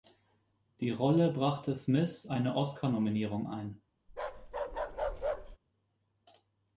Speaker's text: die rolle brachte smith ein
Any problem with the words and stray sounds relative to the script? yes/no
yes